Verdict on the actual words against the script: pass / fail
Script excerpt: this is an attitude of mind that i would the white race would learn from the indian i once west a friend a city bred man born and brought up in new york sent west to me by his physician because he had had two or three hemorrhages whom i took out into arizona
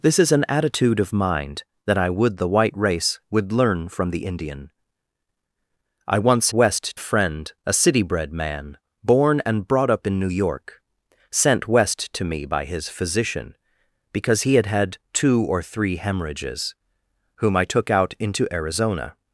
pass